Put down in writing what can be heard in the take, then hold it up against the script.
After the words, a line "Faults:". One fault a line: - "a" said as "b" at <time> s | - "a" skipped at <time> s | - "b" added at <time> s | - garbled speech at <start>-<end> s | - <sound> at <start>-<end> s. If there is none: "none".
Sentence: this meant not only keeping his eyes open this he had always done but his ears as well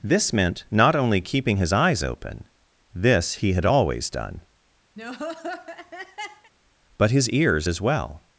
this meant not only keeping his eyes open this he had always done but his ears as well
Faults:
- laugh at 5.0-6.5 s